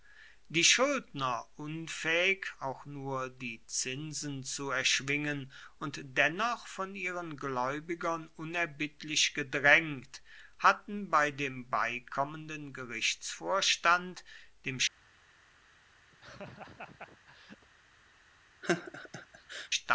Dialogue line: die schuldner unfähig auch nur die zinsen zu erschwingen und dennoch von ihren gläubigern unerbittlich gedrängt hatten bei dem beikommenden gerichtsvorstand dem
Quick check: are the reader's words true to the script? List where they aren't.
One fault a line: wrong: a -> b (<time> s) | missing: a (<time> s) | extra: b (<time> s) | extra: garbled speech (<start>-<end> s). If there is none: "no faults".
no faults